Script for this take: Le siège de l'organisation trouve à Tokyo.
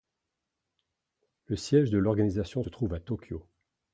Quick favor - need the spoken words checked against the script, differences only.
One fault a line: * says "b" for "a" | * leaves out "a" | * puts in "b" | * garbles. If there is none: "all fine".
all fine